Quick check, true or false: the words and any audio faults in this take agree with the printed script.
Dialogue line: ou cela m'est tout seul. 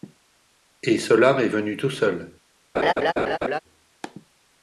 false